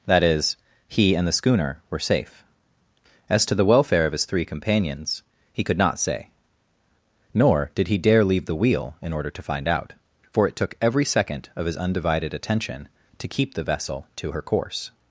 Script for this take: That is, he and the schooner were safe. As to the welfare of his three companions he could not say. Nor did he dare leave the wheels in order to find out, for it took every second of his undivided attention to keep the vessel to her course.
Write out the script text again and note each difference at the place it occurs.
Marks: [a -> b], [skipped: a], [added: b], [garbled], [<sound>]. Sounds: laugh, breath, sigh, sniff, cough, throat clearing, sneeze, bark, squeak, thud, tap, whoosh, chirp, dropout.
That is, he and the schooner were safe. As to the welfare of his three companions he could not say. Nor did he dare leave the [wheels -> wheel] in order to find out, for it took every second of his undivided attention to keep the vessel to her course.